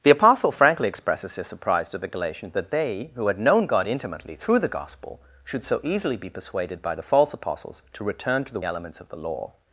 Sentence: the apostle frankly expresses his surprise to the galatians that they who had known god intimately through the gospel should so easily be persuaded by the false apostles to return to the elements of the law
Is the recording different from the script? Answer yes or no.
no